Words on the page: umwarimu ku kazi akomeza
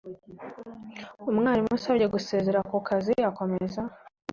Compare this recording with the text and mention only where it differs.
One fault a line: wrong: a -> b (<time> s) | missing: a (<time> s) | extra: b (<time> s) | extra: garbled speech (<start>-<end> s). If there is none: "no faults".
extra: usabye gusezera (1.8 s)